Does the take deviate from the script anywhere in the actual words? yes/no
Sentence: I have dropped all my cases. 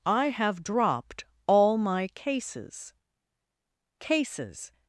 yes